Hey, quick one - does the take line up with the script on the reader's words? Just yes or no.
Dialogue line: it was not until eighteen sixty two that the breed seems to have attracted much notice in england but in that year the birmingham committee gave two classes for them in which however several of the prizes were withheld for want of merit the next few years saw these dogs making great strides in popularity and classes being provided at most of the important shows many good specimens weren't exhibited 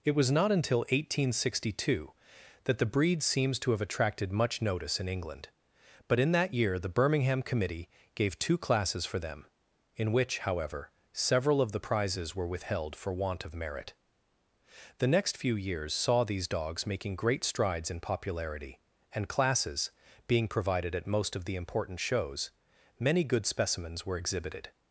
no